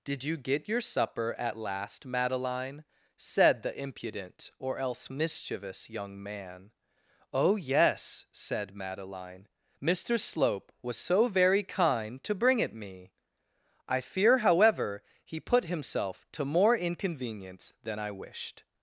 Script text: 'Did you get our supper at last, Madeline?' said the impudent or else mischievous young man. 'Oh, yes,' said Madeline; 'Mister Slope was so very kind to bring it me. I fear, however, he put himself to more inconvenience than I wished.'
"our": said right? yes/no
no